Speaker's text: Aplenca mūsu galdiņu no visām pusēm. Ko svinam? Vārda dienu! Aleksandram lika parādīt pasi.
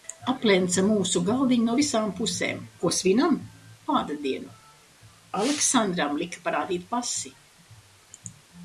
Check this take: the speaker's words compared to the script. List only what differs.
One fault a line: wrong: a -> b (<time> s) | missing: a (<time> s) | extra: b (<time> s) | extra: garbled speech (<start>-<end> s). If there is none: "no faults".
no faults